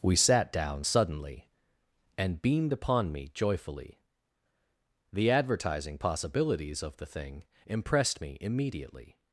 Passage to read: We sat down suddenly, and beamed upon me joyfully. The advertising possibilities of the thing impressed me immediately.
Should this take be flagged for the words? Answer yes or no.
no